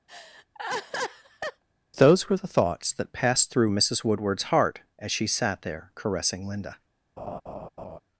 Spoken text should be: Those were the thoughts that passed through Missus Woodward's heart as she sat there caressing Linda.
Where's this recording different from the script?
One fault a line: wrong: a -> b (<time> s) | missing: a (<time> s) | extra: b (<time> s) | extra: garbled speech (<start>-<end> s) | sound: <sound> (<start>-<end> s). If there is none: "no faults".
sound: laugh (0.1-1.6 s)
sound: laugh (7.2-8.0 s)